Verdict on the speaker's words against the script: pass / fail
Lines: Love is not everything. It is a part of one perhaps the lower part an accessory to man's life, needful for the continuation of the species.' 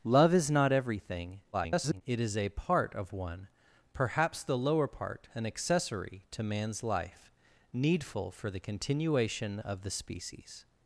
fail